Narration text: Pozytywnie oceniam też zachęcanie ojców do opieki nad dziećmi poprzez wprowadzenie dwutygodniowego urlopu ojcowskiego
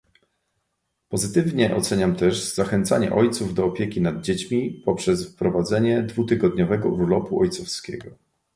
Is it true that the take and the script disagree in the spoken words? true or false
false